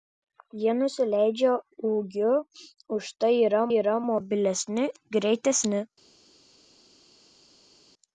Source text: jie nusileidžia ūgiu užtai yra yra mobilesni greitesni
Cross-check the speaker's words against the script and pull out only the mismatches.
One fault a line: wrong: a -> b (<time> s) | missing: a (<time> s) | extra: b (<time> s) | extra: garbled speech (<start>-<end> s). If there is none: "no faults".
no faults